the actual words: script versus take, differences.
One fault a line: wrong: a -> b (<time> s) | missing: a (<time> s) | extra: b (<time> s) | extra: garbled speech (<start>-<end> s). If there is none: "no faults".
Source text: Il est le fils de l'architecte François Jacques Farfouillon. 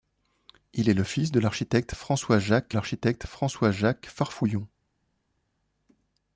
extra: l'architecte François Jacques (2.7 s)